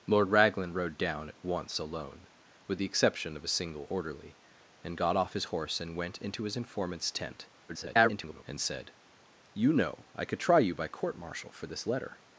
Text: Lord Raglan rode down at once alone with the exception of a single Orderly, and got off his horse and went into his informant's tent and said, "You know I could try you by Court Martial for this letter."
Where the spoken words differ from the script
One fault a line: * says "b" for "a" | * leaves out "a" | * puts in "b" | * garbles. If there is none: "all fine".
* garbles